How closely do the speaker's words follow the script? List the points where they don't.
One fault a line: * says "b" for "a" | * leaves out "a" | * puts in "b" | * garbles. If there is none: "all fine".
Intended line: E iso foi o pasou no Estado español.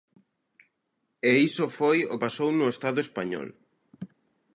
all fine